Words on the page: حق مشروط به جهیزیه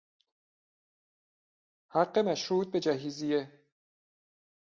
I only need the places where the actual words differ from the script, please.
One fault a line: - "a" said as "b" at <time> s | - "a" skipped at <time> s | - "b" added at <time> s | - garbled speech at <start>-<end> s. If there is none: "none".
none